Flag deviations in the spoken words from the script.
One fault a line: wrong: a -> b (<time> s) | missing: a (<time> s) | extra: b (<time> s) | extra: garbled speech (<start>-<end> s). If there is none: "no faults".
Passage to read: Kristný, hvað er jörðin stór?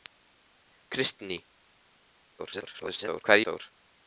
extra: garbled speech (2.4-3.2 s)
missing: jörðin (3.5 s)